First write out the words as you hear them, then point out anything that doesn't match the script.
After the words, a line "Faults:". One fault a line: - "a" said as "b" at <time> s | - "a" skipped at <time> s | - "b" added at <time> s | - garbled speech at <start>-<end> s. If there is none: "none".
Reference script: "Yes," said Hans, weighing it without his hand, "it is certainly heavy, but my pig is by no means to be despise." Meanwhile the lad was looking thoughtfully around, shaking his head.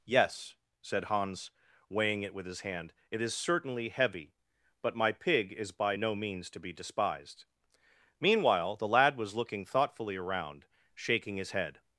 "Yes," said Hans, weighing it with his hand, "it is certainly heavy, but my pig is by no means to be despised." Meanwhile the lad was looking thoughtfully around, shaking his head.
Faults:
- "without" said as "with" at 2.3 s
- "despise" said as "despised" at 6.7 s